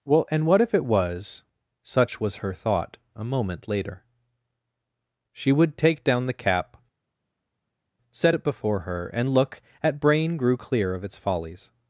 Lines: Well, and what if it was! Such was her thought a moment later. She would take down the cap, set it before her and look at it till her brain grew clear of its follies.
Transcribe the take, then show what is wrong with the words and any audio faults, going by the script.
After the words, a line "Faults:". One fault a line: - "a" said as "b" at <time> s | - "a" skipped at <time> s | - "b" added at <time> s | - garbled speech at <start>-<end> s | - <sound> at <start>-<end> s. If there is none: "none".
Well, and what if it was! Such was her thought a moment later. She would take down the cap, set it before her and look at brain grew clear of its follies.
Faults:
- "it till her" skipped at 10.0 s